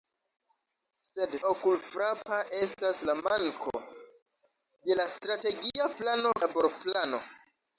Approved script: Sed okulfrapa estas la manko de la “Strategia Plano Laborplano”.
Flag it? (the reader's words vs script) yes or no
no